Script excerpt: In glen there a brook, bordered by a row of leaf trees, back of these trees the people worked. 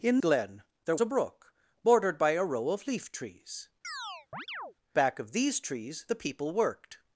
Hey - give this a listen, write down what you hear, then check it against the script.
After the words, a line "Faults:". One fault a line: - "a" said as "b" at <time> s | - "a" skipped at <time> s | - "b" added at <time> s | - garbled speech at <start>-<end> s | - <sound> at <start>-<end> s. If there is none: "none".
In glen there a brook, bordered by a row of leaf trees, back of these trees the people worked.
Faults:
- chirp at 3.8-4.7 s